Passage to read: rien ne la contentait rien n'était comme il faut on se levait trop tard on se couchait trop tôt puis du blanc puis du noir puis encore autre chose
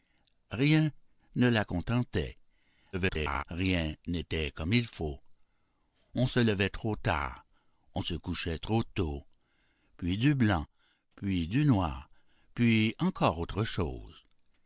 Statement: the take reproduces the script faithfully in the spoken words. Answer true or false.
false